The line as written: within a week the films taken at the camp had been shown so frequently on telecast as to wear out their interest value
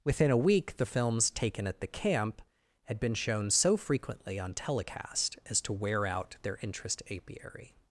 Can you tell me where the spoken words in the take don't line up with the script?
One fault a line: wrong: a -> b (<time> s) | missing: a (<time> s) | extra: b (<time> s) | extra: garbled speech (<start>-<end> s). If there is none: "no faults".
wrong: value -> apiary (7.1 s)